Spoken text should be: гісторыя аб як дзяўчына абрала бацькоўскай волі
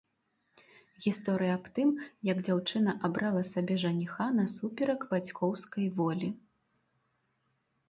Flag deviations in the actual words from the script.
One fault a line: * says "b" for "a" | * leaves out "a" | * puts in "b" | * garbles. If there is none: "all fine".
* puts in "тым"
* puts in "сабе жаніха насуперак"